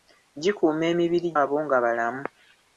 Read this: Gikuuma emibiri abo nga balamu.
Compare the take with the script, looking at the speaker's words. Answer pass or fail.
pass